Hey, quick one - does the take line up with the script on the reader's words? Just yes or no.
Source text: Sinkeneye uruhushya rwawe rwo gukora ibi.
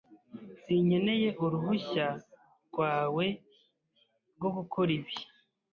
yes